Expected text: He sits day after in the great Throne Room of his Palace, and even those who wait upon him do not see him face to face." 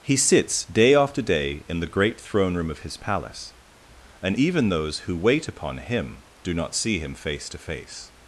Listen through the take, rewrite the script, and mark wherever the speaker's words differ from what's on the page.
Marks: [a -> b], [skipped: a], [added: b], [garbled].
He sits day after [added: day] in the great Throne Room of his Palace, and even those who wait upon him do not see him face to face."